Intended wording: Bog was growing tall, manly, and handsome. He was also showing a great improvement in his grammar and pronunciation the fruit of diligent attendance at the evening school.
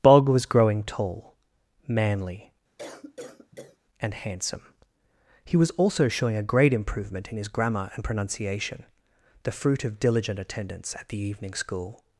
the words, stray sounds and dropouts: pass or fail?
fail